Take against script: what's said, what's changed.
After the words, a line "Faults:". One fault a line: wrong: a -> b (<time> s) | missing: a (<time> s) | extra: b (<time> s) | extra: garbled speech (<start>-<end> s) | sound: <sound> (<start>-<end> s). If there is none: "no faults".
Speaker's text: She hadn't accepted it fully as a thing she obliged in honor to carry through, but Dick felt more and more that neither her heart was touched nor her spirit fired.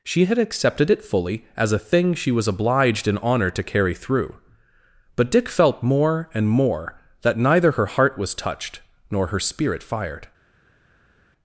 She had accepted it fully as a thing she was obliged in honor to carry through, but Dick felt more and more that neither her heart was touched nor her spirit fired.
Faults:
wrong: hadn't -> had (0.2 s)
extra: was (2.3 s)